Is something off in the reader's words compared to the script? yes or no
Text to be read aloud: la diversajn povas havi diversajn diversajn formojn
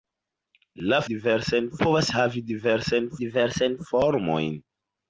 no